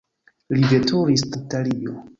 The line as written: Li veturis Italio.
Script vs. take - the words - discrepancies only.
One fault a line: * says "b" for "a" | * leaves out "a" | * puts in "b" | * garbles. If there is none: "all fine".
all fine